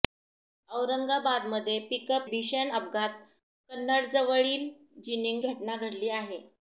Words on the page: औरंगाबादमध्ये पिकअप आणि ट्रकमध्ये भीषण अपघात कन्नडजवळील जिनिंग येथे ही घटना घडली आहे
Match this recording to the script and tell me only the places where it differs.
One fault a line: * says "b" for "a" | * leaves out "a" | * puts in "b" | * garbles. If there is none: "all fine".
* leaves out "आणि ट्रकमध्ये"
* leaves out "येथे ही"